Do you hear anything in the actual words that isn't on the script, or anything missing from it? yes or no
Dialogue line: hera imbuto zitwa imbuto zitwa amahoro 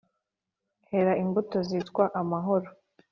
yes